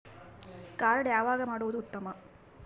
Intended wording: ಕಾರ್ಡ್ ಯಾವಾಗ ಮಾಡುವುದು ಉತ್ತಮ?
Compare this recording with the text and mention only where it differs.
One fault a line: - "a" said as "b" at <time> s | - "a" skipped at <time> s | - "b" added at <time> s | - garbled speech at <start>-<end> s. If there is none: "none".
none